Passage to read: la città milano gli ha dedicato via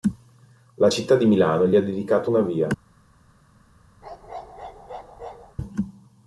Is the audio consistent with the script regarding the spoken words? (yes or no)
no